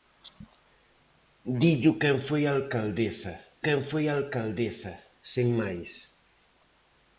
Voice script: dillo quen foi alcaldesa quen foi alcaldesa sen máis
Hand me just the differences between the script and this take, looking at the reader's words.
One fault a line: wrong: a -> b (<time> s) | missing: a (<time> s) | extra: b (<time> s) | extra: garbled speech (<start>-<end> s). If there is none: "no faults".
no faults